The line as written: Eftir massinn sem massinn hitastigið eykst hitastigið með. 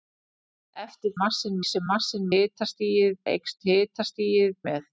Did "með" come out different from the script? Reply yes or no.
no